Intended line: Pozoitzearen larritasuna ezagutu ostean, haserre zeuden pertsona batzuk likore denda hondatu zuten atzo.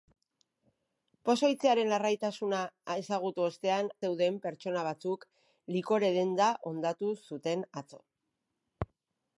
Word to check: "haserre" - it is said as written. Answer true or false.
false